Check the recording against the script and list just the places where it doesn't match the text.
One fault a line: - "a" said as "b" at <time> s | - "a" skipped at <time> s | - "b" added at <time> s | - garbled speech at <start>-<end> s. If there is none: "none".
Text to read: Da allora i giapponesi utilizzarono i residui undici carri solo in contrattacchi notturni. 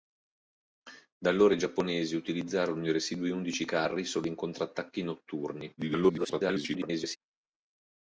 - garbled speech at 5.8-7.2 s